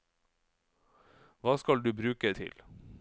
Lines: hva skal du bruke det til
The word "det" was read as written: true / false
false